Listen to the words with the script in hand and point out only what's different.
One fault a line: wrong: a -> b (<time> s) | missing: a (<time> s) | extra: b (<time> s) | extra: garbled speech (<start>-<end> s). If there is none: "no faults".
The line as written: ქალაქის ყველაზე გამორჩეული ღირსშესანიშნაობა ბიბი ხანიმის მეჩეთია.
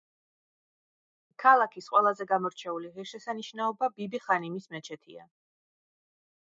no faults